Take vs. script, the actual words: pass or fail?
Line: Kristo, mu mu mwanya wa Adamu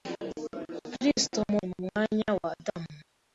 pass